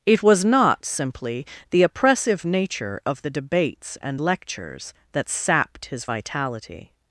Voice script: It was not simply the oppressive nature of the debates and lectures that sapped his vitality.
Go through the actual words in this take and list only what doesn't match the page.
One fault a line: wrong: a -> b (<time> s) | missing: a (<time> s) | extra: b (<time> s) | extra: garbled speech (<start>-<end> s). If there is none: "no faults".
no faults